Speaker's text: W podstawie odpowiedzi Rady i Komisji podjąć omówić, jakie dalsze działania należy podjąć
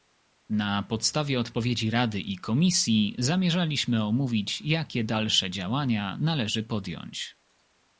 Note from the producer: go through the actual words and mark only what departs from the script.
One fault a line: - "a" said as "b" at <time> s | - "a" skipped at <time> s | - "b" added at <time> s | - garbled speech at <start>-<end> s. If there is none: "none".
- "W" said as "Na" at 0.5 s
- "podjąć" said as "zamierzaliśmy" at 3.2 s